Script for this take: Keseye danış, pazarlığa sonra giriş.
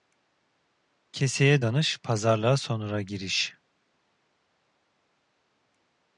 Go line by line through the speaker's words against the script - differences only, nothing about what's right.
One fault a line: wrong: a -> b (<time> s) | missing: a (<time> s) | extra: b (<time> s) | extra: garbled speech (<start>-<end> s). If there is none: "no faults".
no faults